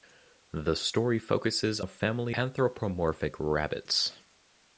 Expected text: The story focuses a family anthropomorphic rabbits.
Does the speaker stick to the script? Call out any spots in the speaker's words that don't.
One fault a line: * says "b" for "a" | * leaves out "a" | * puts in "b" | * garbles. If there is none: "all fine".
all fine